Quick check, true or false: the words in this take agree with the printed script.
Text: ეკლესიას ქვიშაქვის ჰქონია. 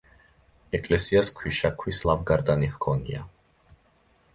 false